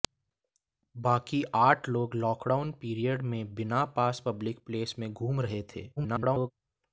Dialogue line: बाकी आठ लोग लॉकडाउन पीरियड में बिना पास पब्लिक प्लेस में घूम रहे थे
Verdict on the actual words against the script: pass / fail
fail